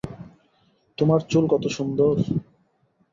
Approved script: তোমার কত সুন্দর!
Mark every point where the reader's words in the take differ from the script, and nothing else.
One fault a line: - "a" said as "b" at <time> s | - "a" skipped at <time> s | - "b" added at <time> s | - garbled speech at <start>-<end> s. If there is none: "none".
- "চুল" added at 1.2 s